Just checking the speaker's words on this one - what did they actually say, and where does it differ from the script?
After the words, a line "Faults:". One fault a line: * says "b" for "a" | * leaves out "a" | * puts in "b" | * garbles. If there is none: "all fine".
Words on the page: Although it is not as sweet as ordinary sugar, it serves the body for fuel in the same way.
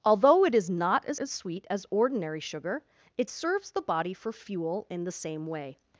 Although it is not as as sweet as ordinary sugar, it serves the body for fuel in the same way.
Faults:
* puts in "as"